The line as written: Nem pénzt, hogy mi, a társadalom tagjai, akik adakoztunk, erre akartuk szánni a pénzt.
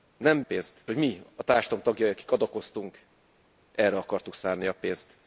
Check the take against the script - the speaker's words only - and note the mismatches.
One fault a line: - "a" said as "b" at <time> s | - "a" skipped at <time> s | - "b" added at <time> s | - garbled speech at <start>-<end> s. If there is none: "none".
none